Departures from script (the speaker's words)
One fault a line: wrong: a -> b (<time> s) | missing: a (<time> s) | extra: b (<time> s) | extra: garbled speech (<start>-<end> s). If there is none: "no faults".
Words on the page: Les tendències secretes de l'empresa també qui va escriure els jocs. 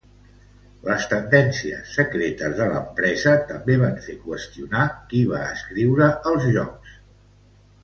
extra: van fer qüestionar (3.8 s)